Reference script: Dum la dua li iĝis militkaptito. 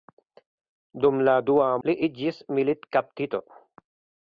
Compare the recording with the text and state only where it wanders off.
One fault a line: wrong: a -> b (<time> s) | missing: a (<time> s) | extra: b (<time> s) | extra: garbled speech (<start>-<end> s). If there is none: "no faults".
no faults